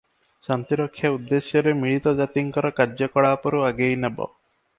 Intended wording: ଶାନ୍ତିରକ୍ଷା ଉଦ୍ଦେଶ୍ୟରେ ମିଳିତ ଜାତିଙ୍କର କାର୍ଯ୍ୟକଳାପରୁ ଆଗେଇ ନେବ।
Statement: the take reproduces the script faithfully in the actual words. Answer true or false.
true